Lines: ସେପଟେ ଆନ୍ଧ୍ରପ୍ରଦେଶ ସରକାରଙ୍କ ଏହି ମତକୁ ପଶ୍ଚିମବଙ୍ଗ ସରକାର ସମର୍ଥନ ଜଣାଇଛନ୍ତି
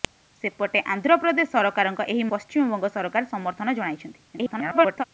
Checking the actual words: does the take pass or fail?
fail